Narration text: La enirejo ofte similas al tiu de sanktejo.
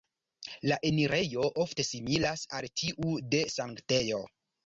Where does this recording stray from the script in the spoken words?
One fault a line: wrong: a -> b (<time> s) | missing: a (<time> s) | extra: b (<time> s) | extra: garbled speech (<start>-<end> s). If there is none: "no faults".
no faults